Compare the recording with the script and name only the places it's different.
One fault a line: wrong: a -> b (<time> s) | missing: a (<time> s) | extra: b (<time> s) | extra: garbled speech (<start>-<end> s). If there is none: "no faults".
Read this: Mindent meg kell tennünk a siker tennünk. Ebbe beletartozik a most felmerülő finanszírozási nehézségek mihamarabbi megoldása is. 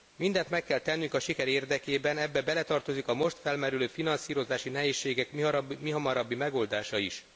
wrong: tennünk -> érdekében (1.5 s)